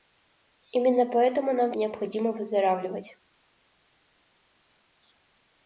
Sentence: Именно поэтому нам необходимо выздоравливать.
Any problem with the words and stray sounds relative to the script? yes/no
no